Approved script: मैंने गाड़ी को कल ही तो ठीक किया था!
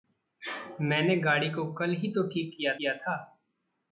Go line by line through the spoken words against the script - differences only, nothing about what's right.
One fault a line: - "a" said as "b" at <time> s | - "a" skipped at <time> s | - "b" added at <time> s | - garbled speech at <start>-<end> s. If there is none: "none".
- "किया" added at 2.8 s